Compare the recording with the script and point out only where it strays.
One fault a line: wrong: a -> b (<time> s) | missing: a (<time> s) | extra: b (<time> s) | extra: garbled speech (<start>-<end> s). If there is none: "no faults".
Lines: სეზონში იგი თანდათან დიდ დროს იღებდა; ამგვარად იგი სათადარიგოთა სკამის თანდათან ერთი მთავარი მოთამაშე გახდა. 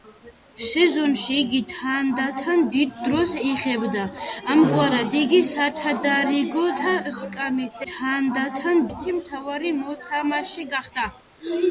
no faults